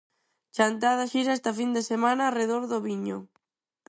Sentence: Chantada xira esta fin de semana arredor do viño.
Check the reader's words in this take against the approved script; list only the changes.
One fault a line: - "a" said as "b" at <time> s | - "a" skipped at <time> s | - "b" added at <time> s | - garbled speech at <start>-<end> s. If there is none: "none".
none